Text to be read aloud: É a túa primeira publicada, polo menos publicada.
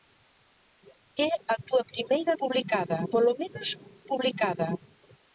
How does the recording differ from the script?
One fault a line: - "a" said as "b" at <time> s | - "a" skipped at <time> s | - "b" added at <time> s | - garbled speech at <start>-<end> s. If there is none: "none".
none